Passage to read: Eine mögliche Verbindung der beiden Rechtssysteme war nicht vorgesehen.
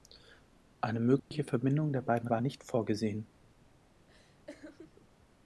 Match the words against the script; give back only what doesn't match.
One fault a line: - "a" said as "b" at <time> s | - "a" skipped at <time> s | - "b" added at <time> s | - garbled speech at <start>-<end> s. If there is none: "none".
- "Rechtssysteme" skipped at 2.3 s